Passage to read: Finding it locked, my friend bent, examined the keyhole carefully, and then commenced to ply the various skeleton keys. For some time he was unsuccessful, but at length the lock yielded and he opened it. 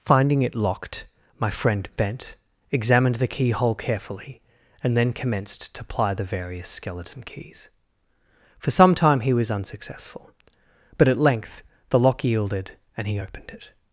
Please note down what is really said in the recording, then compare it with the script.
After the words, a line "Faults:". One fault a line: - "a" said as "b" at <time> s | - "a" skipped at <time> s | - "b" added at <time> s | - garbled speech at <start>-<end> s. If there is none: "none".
Finding it locked, my friend bent, examined the keyhole carefully, and then commenced to ply the various skeleton keys. For some time he was unsuccessful, but at length the lock yielded and he opened it.
Faults:
none